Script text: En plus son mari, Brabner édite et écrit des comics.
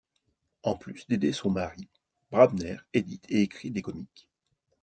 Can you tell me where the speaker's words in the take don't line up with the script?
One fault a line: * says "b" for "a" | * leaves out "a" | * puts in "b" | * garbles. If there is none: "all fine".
* puts in "d'aider"